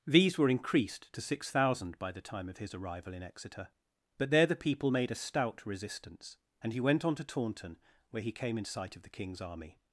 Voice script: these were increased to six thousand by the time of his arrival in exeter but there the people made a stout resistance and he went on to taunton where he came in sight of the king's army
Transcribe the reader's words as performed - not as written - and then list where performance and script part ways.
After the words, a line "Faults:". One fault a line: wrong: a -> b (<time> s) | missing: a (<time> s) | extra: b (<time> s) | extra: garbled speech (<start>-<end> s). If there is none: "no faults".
these were increased to six thousand by the time of his arrival in exeter but there the people made a stout resistance and he went on to taunton where he came in sight of the king's army
Faults:
no faults